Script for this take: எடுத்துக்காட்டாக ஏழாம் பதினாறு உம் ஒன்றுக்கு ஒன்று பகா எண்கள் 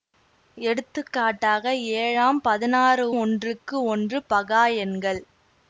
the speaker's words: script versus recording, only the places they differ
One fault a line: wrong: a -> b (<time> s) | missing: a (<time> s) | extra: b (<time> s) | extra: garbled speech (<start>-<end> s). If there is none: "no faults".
missing: உம் (3.0 s)